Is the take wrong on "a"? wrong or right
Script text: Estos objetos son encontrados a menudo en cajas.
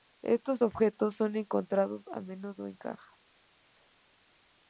right